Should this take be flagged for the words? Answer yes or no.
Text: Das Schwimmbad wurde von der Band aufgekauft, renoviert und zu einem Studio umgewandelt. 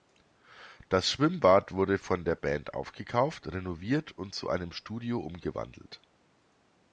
no